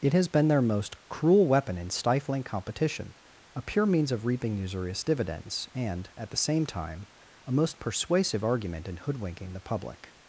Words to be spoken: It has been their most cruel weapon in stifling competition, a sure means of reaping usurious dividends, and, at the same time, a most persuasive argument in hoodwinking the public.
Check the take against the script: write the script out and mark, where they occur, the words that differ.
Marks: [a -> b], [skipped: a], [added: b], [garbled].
It has been their most cruel weapon in stifling competition, a [sure -> pure] means of reaping usurious dividends, and, at the same time, a most persuasive argument in hoodwinking the public.